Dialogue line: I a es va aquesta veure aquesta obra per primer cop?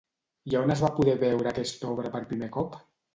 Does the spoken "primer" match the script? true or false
true